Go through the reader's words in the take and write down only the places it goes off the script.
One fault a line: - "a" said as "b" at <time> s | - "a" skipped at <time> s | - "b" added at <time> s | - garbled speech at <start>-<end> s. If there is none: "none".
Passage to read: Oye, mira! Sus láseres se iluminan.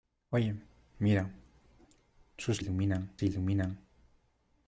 - "láseres" said as "iluminan" at 2.6 s